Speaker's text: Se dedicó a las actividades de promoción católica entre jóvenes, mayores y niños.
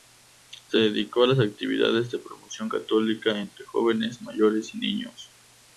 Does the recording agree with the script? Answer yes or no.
yes